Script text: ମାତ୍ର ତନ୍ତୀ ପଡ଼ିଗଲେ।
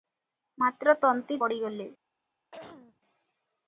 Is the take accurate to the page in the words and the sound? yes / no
no